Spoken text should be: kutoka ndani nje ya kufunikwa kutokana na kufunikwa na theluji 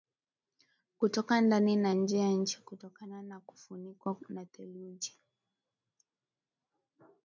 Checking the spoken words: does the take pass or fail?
fail